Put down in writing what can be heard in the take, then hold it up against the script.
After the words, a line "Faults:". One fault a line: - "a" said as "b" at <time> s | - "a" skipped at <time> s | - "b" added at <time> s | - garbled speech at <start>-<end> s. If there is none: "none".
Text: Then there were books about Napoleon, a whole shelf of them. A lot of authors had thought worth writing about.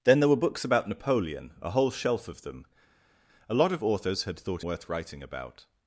Then there were books about Napoleon, a whole shelf of them. A lot of authors had thought worth writing about.
Faults:
none